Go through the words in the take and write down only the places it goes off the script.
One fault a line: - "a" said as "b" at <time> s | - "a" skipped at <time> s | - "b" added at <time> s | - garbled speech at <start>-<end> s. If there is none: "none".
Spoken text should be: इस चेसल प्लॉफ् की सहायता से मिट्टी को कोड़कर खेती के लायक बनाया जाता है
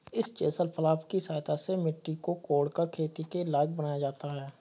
none